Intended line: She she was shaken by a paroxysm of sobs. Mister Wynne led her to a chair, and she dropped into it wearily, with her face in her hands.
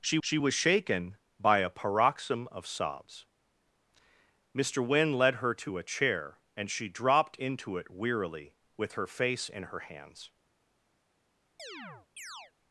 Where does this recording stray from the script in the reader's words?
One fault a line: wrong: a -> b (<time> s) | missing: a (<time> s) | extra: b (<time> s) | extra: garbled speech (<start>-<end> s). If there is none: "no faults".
no faults